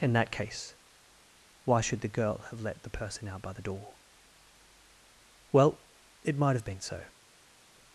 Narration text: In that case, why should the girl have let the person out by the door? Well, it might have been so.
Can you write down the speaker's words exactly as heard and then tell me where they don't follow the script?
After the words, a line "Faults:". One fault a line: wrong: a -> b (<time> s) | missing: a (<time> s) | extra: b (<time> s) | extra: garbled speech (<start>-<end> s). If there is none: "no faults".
In that case, why should the girl have let the person out by the door? Well, it might have been so.
Faults:
no faults